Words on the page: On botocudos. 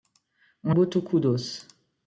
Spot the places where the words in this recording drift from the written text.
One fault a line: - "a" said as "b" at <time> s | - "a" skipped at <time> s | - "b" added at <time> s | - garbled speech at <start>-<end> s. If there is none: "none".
none